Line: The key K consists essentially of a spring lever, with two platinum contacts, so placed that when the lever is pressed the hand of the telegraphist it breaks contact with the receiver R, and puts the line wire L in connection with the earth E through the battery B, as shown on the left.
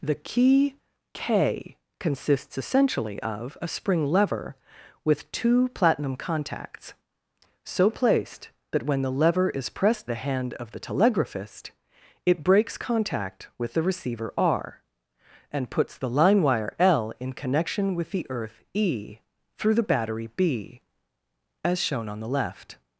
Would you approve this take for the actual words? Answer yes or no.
yes